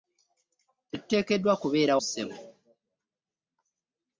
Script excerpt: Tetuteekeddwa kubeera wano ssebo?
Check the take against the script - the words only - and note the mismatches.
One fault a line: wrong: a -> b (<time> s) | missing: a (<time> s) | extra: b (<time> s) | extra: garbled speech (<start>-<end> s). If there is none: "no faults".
missing: wano (1.9 s)